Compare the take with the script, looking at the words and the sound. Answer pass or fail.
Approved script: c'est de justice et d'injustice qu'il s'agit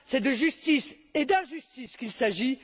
pass